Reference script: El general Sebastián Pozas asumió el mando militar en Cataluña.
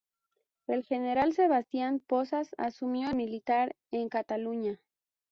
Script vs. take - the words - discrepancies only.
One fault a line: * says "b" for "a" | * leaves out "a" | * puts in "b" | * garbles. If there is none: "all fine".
* leaves out "el mando"